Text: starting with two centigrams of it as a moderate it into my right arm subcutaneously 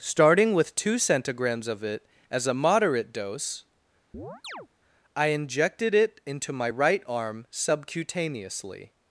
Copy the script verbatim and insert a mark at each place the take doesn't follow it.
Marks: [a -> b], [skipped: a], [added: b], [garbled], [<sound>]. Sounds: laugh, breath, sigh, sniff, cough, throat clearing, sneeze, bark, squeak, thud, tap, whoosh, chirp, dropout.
starting with two centigrams of it as a moderate [added: dose i injected] [chirp] it into my right arm subcutaneously